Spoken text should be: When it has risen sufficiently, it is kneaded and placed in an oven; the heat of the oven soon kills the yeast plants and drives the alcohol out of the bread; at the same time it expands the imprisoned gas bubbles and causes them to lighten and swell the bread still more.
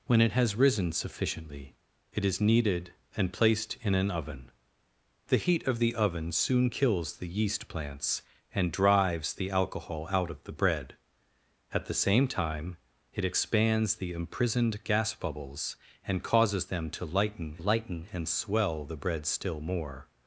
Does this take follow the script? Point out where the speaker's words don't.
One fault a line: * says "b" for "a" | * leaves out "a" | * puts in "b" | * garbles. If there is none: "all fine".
* puts in "lighten"